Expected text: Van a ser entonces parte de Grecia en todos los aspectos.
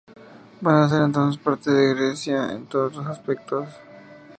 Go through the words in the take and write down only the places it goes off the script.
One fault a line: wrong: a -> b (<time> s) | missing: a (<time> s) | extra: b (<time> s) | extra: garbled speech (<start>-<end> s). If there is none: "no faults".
no faults